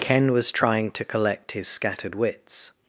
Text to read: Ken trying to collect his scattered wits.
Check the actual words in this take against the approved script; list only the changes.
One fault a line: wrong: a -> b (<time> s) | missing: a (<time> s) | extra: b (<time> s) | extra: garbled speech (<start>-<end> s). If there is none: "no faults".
extra: was (0.3 s)